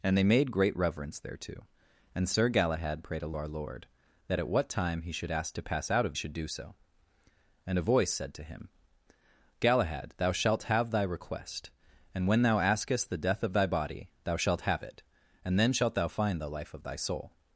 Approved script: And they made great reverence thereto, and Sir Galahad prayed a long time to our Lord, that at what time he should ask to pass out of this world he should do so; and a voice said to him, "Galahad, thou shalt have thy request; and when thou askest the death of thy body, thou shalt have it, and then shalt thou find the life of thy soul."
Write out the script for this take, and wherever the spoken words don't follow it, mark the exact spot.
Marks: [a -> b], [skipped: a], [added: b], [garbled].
And they made great reverence thereto, and Sir Galahad prayed a [skipped: long time to] our Lord, that at what time he should ask to pass out of [skipped: this world he] should do so; and a voice said to him, "Galahad, thou shalt have thy request; and when thou askest the death of thy body, thou shalt have it, and then shalt thou find the life of thy soul."